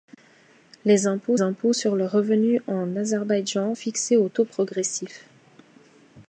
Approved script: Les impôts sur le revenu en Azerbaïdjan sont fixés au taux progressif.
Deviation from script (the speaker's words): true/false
true